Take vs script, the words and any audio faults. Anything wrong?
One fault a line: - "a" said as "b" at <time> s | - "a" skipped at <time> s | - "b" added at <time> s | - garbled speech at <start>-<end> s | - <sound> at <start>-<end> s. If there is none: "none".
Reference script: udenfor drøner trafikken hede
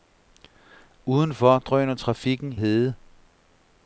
none